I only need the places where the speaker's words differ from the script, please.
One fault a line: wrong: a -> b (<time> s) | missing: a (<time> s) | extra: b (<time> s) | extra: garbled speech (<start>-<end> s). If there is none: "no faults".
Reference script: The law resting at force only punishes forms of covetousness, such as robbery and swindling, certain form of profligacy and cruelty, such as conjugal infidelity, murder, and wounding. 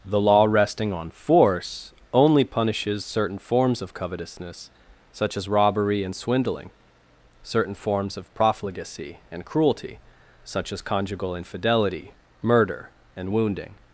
wrong: at -> on (0.9 s)
extra: certain (3.0 s)
wrong: form -> forms (7.8 s)